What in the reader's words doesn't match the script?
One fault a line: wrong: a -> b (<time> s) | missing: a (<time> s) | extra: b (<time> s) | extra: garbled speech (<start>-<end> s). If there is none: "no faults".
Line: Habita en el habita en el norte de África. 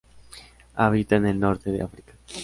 missing: habita en el (1.4 s)